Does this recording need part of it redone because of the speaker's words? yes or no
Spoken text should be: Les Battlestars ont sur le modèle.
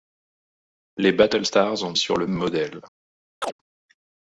no